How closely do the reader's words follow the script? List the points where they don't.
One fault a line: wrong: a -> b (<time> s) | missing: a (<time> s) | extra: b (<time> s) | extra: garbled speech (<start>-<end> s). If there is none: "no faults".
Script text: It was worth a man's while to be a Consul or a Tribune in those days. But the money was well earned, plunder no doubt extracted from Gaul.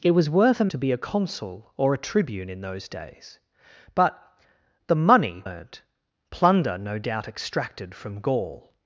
missing: man's while (0.7 s)
missing: was well (5.4 s)